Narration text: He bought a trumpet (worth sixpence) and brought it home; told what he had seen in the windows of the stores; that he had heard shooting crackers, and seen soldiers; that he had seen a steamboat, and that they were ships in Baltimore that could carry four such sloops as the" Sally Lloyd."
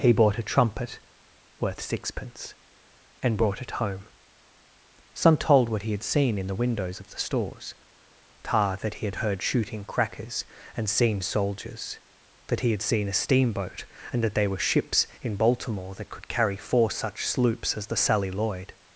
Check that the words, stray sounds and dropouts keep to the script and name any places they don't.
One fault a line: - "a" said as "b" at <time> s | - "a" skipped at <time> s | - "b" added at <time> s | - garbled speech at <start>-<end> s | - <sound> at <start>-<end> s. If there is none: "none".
- "some" added at 5.1 s
- "tar" added at 8.4 s
- "they" said as "there" at 14.3 s